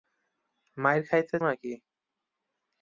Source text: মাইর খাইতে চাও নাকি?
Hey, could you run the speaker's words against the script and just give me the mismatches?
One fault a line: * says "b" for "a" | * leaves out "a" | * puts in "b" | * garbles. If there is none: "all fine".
* leaves out "চাও"